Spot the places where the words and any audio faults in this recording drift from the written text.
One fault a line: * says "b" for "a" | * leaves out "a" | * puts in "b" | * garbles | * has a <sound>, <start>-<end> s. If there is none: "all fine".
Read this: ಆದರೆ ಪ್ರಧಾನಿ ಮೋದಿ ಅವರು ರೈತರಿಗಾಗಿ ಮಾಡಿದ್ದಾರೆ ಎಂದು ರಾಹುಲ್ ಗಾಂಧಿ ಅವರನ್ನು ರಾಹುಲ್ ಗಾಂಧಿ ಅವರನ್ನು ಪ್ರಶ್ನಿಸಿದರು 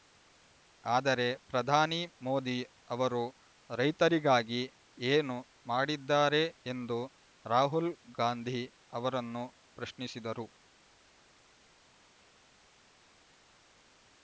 * puts in "ಏನು"
* leaves out "ರಾಹುಲ್ ಗಾಂಧಿ ಅವರನ್ನು"